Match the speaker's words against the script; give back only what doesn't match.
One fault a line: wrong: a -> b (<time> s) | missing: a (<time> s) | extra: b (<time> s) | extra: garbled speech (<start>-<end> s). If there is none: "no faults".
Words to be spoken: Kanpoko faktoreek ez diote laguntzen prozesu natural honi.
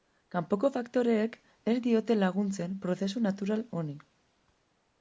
no faults